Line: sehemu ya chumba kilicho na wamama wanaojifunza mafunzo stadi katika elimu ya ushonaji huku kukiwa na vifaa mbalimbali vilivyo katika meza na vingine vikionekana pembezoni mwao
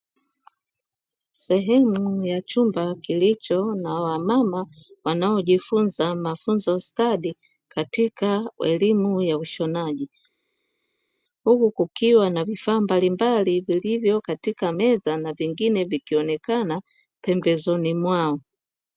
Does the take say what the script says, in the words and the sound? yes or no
yes